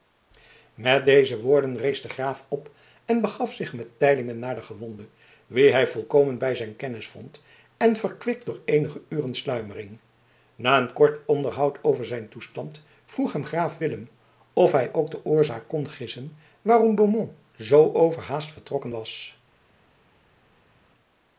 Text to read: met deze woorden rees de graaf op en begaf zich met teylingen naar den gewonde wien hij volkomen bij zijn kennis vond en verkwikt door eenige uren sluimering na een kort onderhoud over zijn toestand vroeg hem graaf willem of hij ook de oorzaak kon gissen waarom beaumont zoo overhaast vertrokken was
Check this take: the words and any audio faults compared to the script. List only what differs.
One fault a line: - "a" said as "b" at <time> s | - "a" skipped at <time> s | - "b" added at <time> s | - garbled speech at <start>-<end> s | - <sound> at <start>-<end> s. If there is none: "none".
none